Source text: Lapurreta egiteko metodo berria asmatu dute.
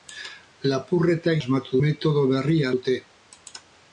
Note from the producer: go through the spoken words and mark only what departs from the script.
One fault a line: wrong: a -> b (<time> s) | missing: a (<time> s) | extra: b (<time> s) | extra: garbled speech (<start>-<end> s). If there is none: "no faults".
wrong: egiteko -> asmatu (1.4 s)
missing: asmatu (2.7 s)